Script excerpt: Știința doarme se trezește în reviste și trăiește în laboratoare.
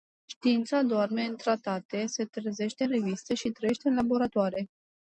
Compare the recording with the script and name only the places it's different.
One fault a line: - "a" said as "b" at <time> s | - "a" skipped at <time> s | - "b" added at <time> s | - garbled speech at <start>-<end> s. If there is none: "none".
- "în tratate" added at 1.2 s